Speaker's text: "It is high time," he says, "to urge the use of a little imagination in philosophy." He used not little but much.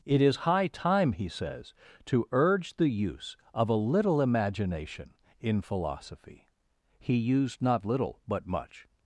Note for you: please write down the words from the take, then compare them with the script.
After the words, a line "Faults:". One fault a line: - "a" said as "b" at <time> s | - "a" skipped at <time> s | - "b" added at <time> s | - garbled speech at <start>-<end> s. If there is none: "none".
"It is high time," he says, "to urge the use of a little imagination in philosophy." He used not little but much.
Faults:
none